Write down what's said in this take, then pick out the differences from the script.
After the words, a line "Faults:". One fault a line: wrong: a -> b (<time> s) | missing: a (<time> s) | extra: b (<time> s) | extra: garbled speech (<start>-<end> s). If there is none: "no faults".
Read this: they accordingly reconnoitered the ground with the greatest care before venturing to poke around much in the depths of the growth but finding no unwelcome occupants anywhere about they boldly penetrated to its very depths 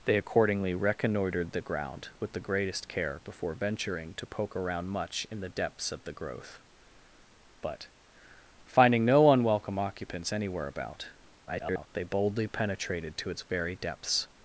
they accordingly reconnoitered the ground with the greatest care before venturing to poke around much in the depths of the growth but finding no unwelcome occupants anywhere about [garbled] they boldly penetrated to its very depths
Faults:
extra: garbled speech (11.5-11.9 s)